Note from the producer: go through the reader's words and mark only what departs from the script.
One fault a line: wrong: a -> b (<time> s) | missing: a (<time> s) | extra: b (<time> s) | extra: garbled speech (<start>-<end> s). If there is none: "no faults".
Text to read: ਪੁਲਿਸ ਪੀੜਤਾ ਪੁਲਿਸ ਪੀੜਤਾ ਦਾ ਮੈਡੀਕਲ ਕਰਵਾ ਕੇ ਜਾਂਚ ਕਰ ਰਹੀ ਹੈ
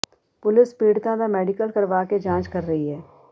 missing: ਪੁਲਿਸ ਪੀੜਤਾ (1.1 s)